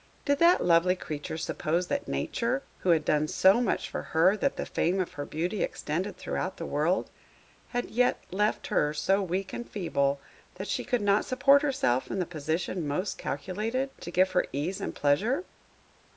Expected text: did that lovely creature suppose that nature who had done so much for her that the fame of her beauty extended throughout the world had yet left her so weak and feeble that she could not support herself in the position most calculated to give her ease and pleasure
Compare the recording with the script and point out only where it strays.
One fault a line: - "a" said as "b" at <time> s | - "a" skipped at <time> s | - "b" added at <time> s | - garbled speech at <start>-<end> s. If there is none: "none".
none